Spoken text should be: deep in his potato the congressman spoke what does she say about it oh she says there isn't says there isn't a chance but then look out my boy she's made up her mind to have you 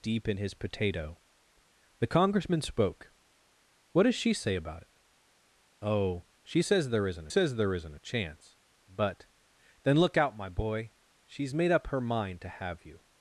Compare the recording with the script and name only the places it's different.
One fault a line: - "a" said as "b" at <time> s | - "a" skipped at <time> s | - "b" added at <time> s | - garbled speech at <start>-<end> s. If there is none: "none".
none